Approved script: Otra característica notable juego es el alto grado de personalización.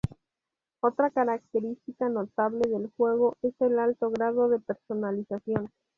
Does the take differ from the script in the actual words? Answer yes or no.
yes